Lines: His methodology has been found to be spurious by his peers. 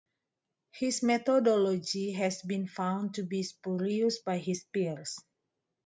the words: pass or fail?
pass